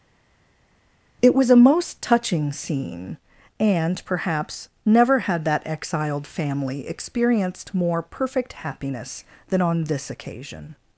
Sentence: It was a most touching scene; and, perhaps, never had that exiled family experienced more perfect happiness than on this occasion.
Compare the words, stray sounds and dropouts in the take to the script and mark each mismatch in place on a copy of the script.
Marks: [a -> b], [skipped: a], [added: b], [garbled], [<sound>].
It was a most touching scene; and, perhaps, never had that exiled family experienced more perfect happiness than on this occasion.